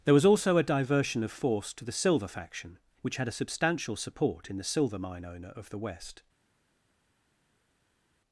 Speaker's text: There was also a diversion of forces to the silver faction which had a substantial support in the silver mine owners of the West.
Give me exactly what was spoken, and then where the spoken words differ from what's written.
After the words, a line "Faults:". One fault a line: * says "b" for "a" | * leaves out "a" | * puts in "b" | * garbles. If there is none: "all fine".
There was also a diversion of force to the silver faction which had a substantial support in the silver mine owner of the West.
Faults:
* says "force" for "forces"
* says "owner" for "owners"